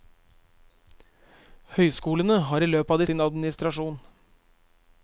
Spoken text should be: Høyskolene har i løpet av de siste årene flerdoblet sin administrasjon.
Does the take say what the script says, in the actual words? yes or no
no